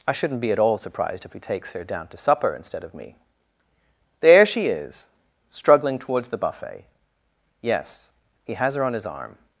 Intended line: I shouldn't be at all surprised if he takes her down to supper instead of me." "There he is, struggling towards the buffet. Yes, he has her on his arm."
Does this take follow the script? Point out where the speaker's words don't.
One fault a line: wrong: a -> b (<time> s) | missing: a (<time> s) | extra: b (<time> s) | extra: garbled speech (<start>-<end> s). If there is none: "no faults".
wrong: he -> she (4.5 s)